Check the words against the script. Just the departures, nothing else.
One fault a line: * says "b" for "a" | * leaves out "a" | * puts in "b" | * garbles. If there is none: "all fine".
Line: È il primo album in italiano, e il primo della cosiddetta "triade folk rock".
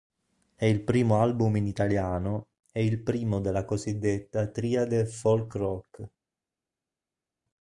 all fine